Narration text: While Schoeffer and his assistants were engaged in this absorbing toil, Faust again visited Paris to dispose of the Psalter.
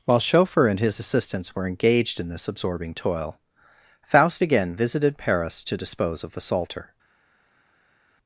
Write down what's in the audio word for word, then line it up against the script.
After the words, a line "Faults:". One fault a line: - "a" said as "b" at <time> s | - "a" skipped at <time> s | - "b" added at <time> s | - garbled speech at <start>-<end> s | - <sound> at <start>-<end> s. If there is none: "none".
While Schoeffer and his assistants were engaged in this absorbing toil, Faust again visited Paris to dispose of the Psalter.
Faults:
none